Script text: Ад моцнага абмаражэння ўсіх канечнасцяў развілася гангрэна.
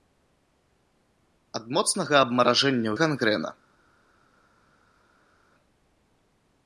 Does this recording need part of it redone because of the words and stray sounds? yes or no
yes